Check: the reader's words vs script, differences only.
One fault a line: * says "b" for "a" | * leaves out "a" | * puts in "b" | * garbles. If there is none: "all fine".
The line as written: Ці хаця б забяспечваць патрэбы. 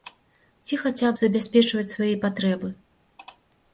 * puts in "свае"